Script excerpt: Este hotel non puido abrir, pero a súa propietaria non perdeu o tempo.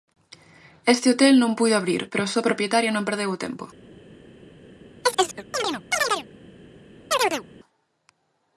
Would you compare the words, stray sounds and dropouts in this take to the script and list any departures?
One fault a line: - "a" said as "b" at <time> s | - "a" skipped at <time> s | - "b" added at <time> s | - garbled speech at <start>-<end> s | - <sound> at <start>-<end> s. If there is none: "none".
- chirp at 5.0-6.3 s
- chirp at 7.1-7.4 s